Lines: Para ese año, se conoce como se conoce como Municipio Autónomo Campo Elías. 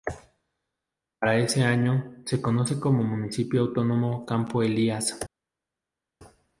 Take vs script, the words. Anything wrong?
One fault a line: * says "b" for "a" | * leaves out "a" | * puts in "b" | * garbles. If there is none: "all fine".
* leaves out "se conoce como"